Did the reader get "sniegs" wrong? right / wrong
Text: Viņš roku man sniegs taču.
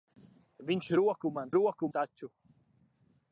wrong